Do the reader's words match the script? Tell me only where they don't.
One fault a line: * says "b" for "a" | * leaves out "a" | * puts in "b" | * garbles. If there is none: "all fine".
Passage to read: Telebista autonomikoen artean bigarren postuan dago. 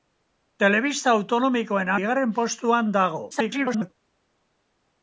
* leaves out "artean"
* garbles